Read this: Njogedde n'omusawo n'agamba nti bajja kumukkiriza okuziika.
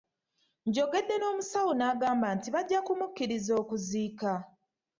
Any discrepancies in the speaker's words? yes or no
no